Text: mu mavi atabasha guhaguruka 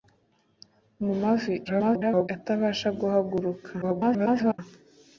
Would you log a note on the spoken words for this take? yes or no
yes